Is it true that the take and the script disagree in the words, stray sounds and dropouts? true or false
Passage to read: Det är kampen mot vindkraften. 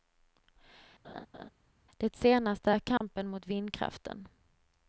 true